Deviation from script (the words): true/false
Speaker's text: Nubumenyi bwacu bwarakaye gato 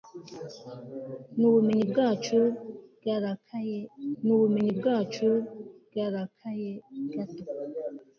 true